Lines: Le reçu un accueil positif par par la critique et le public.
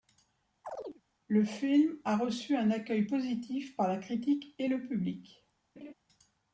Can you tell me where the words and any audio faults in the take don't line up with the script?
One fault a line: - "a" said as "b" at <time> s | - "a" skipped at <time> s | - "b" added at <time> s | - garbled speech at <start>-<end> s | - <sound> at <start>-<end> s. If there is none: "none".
- chirp at 0.6-1.0 s
- "film a" added at 1.4 s
- "par" skipped at 3.9 s
- laugh at 5.8-5.9 s